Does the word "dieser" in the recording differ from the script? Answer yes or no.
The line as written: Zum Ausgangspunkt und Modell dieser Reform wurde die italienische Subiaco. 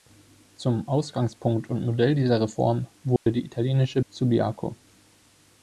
no